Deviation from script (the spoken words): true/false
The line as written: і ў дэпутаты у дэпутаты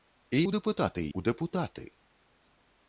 false